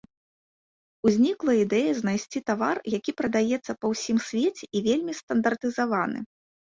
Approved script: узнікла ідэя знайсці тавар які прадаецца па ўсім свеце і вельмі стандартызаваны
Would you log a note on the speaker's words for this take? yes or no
no